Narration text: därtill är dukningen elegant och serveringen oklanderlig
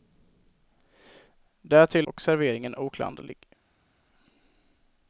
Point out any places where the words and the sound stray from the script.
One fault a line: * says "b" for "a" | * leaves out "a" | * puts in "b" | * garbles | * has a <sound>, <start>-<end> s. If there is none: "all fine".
* leaves out "är dukningen elegant"